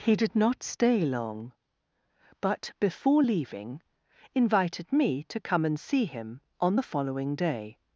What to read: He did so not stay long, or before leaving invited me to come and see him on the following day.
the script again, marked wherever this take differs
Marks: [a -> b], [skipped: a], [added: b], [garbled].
He did [skipped: so] not stay long, [or -> but] before leaving invited me to come and see him on the following day.